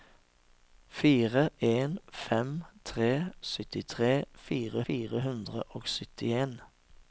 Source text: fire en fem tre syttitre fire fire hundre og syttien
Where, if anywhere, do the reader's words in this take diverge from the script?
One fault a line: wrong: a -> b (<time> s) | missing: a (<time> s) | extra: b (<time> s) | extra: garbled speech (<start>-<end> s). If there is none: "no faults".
no faults